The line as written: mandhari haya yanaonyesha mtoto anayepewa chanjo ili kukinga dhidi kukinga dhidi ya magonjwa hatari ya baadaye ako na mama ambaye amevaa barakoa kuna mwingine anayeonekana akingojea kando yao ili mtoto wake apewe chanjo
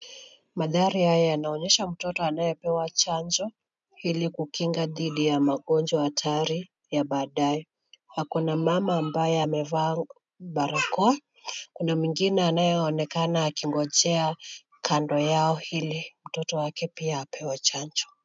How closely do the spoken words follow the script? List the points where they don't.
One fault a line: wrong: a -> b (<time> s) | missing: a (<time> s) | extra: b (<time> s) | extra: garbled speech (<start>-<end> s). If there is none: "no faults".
missing: kukinga dhidi (5.2 s)
extra: pia (16.9 s)